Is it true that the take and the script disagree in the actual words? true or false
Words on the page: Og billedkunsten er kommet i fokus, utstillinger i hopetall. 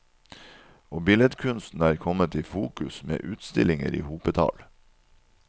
true